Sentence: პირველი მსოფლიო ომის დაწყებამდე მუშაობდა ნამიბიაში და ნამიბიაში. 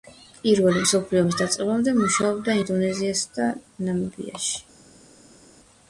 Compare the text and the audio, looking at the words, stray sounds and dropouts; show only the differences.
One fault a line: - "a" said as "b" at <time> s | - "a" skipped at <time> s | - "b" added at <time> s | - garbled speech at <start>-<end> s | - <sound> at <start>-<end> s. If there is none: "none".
- "ნამიბიაში" said as "ინდონეზიასა" at 2.6 s